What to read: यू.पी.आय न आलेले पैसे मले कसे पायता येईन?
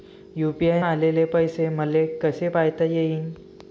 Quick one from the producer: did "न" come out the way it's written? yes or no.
no